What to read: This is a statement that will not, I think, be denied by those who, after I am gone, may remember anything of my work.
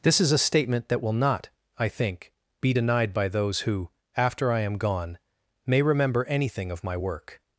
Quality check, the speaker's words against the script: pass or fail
pass